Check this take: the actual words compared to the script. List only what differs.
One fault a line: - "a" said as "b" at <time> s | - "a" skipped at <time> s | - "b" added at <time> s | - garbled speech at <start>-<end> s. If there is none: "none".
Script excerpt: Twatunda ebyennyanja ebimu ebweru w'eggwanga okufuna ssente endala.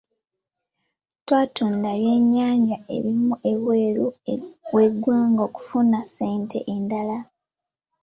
none